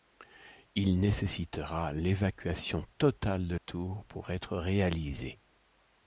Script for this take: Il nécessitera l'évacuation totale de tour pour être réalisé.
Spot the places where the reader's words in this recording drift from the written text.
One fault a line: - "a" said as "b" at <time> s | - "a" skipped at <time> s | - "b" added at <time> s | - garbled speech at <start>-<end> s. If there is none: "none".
none